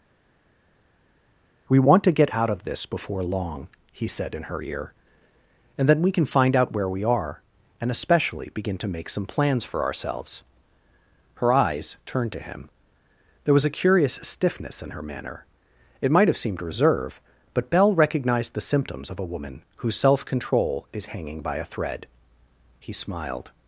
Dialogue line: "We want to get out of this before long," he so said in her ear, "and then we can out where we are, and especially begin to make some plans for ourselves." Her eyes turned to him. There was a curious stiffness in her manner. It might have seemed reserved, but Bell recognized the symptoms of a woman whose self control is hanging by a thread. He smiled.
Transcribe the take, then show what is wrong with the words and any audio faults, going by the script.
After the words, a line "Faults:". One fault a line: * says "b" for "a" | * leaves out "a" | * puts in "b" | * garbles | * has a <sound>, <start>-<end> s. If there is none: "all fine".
"We want to get out of this before long," he said in her ear, "and then we can find out where we are, and especially begin to make some plans for ourselves." Her eyes turned to him. There was a curious stiffness in her manner. It might have seemed reserve, but Bell recognized the symptoms of a woman whose self control is hanging by a thread. He smiled.
Faults:
* leaves out "so"
* puts in "find"
* says "reserve" for "reserved"